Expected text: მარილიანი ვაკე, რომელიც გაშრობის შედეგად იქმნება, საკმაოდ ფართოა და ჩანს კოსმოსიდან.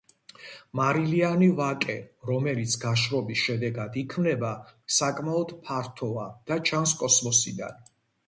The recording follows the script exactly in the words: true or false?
true